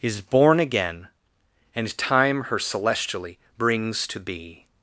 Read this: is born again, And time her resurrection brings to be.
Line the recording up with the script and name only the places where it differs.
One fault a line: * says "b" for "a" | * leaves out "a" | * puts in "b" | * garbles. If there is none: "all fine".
* says "celestially" for "resurrection"